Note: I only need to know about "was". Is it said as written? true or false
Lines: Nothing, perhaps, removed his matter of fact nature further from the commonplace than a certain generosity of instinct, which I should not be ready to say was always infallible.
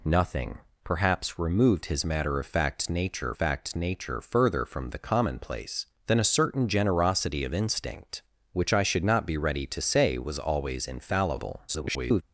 true